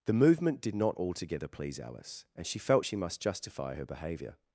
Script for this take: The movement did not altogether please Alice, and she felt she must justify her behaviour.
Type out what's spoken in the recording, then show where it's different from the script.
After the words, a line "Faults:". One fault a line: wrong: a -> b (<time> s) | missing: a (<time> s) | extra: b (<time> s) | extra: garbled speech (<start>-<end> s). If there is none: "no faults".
The movement did not altogether please Alice, and she felt she must justify her behaviour.
Faults:
no faults